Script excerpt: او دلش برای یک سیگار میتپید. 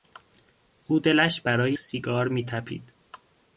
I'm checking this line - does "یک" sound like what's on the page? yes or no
no